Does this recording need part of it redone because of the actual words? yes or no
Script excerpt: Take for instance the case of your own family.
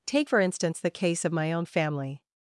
yes